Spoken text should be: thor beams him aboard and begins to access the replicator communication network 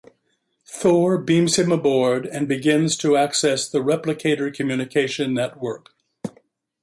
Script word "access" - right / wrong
right